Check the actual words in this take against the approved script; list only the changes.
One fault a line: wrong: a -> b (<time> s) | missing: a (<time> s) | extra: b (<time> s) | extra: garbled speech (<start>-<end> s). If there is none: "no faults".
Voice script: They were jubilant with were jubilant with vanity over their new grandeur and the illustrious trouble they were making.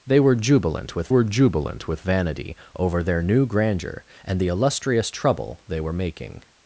no faults